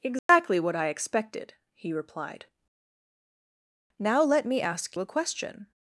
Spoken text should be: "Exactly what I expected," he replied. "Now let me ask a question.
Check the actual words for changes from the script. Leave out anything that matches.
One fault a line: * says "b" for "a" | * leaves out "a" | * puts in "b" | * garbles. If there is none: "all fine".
all fine